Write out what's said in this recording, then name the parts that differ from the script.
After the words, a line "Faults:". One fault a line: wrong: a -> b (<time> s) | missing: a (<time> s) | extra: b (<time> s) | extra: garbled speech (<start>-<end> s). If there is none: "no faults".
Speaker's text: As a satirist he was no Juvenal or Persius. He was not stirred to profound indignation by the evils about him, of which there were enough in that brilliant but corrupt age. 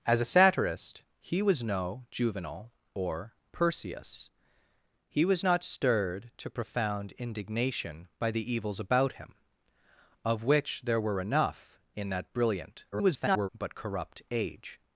As a satirist he was no Juvenal or Persius. He was not stirred to profound indignation by the evils about him, of which there were enough in that brilliant [garbled] but corrupt age.
Faults:
extra: garbled speech (12.9-13.5 s)